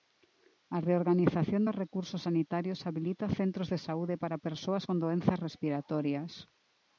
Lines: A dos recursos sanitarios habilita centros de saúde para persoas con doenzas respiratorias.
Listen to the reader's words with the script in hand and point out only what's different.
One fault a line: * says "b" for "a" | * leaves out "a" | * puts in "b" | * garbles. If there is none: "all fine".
* puts in "reorganización"